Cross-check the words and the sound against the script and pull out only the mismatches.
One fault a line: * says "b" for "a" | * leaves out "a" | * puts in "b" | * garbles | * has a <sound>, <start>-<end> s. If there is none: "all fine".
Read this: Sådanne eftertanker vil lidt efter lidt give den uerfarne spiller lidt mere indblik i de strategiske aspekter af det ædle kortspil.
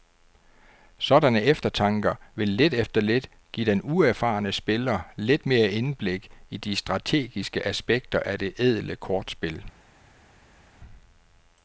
all fine